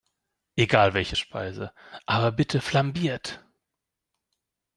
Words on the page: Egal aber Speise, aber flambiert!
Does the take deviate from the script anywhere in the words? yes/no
yes